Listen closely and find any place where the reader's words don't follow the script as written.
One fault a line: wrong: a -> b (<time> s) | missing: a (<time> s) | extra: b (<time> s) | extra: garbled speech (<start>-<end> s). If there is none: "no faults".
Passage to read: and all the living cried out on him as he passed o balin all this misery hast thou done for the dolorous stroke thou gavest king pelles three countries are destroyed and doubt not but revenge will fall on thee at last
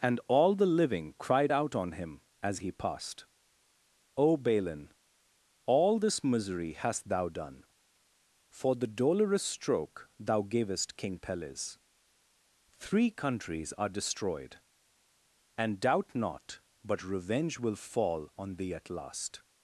no faults